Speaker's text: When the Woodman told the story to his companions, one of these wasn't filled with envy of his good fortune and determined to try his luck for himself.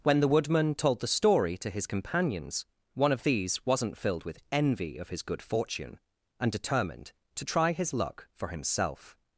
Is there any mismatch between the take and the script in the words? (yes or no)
no